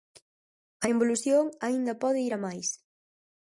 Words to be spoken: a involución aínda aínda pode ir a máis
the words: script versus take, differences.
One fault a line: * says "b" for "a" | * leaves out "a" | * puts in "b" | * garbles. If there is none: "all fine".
* leaves out "aínda"